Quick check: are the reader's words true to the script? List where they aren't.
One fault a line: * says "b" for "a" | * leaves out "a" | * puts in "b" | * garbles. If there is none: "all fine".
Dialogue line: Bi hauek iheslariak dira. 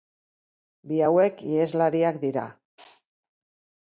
all fine